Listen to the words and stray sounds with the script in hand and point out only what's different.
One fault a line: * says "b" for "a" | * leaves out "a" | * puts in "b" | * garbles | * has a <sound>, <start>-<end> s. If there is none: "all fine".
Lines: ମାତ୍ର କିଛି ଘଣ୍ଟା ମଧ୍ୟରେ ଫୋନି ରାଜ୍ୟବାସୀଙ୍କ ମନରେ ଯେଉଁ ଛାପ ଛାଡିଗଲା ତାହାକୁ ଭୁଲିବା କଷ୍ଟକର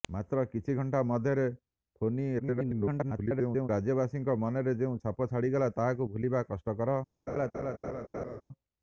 * garbles
* has a laugh, 7.3-8.4 s